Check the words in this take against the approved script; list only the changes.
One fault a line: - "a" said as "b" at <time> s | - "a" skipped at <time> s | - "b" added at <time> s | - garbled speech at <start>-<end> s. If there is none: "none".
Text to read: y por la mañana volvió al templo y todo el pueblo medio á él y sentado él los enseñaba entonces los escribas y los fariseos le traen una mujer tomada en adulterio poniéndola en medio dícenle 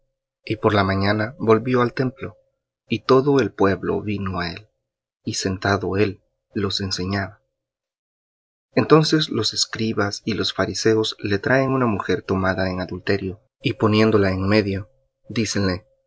- "medio" said as "vino" at 4.0 s
- "y" added at 13.6 s